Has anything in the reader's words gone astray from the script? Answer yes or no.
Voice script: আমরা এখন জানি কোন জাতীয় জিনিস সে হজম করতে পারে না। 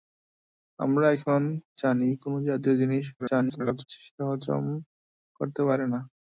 yes